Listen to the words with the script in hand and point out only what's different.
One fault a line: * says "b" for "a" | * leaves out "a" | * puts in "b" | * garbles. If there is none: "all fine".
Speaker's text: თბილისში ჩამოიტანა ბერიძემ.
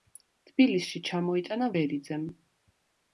all fine